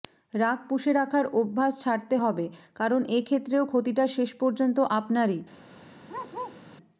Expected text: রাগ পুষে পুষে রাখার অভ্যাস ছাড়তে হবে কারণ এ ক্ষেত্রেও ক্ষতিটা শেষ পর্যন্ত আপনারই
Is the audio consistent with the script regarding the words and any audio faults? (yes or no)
no